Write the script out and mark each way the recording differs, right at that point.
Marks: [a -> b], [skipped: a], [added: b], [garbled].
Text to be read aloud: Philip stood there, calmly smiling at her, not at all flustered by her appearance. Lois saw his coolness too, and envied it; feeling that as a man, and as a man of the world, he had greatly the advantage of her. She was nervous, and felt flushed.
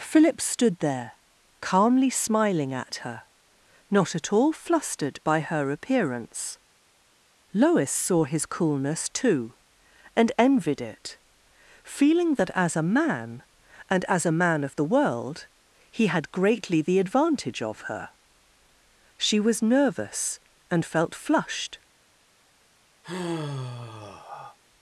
Philip stood there, calmly smiling at her, not at all flustered by her appearance. Lois saw his coolness too, and envied it; feeling that as a man, and as a man of the world, he had greatly the advantage of her. She was nervous, and felt flushed.